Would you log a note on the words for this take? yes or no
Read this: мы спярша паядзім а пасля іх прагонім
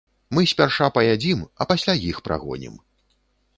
no